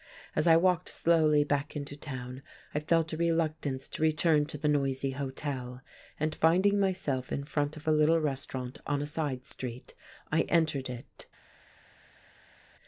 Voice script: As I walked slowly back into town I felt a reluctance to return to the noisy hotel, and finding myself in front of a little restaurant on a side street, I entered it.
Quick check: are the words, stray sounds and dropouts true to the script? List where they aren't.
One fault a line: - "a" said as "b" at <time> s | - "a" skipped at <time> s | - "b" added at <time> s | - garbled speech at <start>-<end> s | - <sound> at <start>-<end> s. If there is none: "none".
none